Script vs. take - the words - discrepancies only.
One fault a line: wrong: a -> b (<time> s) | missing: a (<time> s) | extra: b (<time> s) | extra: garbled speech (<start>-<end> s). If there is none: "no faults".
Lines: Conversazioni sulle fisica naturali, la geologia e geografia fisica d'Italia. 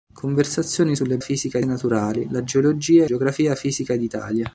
no faults